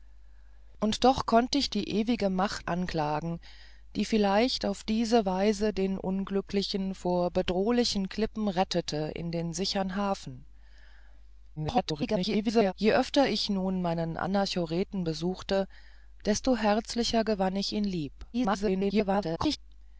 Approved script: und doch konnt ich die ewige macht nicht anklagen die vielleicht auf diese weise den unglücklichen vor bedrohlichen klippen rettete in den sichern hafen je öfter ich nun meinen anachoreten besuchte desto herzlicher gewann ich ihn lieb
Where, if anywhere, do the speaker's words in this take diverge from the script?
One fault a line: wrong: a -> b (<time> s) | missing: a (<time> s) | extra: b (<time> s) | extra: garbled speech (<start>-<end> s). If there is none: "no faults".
missing: nicht (2.7 s)
extra: garbled speech (11.6-12.7 s)
extra: garbled speech (18.3-19.6 s)